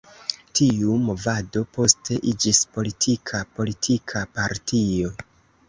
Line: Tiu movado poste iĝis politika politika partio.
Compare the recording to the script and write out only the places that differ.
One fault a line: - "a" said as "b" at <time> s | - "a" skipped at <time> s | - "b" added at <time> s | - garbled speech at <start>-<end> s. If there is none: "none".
none